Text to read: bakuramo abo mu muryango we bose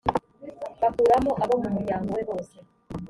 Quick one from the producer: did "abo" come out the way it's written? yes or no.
yes